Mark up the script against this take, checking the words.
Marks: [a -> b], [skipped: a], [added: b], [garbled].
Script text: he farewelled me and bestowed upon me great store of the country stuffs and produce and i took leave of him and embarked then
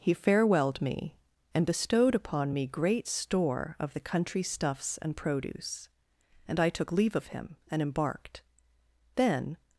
he farewelled me and bestowed upon me great store of the country stuffs and produce and i took leave of him and embarked then